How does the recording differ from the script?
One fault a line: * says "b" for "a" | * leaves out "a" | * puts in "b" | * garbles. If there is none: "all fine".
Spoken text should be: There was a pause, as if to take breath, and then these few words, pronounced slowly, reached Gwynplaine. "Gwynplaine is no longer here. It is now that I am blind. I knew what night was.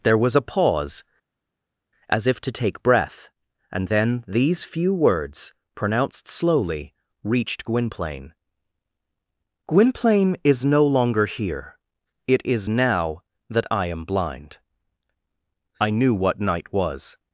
all fine